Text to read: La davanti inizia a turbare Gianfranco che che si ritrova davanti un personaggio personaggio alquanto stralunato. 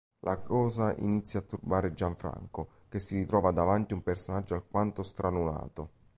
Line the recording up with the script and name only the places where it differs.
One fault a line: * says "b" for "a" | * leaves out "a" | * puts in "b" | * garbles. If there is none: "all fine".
* says "cosa" for "davanti"
* leaves out "che"
* leaves out "personaggio"